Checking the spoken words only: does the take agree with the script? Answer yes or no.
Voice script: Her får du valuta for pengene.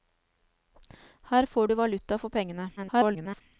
no